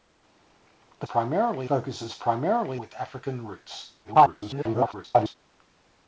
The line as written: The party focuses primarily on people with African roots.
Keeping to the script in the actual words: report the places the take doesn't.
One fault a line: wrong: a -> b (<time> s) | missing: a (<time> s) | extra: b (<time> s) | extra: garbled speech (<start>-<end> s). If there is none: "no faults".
wrong: party -> primarily (1.0 s)
missing: on people (2.8 s)
extra: garbled speech (4.0-5.4 s)